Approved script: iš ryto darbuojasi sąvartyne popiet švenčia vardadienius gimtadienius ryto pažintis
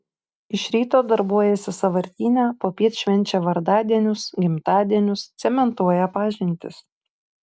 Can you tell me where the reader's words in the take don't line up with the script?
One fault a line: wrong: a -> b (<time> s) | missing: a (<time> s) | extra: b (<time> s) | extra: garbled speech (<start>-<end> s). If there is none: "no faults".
wrong: ryto -> cementuoja (5.4 s)